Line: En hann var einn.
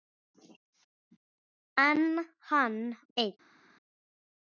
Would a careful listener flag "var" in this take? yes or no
yes